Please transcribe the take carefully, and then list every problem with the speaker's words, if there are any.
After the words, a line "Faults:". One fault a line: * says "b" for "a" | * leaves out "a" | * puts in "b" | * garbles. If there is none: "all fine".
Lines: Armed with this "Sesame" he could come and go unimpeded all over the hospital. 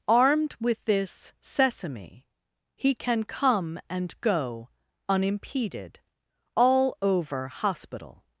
Armed with this "Sesame" he can come and go unimpeded all over hospital.
Faults:
* says "can" for "could"
* leaves out "the"